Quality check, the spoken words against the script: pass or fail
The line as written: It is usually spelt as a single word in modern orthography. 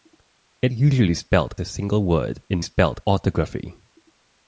fail